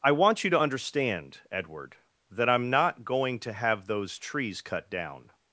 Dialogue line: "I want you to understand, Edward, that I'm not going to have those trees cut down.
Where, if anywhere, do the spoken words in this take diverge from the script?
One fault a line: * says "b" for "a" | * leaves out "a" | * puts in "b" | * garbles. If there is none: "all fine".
all fine